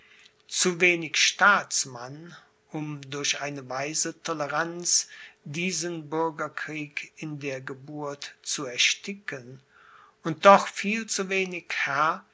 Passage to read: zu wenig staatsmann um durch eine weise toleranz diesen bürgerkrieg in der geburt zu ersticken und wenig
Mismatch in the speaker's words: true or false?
true